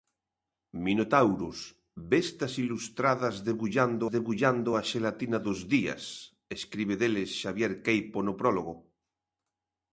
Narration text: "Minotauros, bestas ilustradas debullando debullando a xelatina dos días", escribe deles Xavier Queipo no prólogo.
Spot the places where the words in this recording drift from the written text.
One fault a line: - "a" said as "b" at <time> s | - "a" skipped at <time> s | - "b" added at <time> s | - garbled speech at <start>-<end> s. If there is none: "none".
none